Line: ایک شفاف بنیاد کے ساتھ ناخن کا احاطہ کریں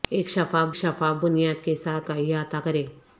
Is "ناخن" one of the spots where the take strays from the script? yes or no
yes